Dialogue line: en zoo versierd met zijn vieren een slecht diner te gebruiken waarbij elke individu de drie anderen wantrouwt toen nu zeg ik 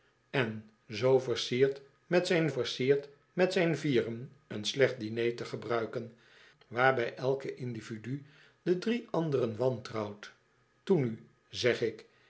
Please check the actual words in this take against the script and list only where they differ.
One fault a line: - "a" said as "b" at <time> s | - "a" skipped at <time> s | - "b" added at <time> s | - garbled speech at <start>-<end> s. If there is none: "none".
- "versierd met zijn" added at 2.5 s